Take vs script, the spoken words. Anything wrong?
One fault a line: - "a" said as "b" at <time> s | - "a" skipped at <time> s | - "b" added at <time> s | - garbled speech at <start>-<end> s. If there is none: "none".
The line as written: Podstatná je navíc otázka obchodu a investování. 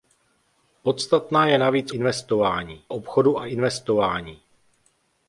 - "otázka" said as "investování" at 1.9 s